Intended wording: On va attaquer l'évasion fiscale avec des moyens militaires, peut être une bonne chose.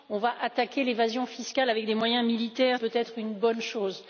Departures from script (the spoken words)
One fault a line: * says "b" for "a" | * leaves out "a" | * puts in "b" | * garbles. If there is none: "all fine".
all fine